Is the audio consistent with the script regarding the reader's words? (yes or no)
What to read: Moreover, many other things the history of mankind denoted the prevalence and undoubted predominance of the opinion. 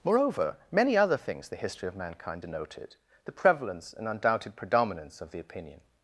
yes